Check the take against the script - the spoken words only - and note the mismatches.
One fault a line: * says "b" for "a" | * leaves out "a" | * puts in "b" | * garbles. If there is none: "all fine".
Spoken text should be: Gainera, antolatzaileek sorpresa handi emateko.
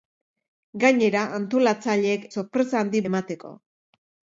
all fine